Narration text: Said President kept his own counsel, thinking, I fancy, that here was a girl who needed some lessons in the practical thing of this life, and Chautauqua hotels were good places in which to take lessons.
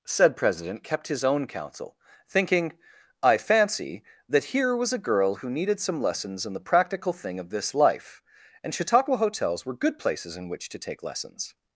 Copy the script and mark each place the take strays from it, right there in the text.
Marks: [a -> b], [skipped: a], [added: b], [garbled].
Said President kept his own counsel, thinking, I fancy, that here was a girl who needed some lessons in the practical thing of this life, and Chautauqua hotels were good places in which to take lessons.